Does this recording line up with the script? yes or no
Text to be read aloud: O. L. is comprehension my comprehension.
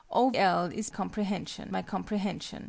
yes